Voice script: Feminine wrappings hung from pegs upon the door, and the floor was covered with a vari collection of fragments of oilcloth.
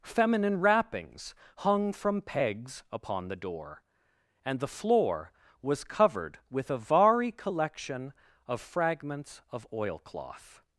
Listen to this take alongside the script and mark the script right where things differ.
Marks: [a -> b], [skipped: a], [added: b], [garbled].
Feminine wrappings hung from pegs upon the door, and the floor was covered with a vari collection of fragments of oilcloth.